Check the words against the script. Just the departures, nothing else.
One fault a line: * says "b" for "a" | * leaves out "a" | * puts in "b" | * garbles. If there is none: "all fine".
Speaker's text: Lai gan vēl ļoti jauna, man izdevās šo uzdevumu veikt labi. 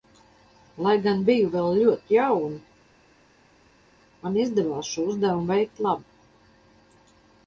* puts in "biju"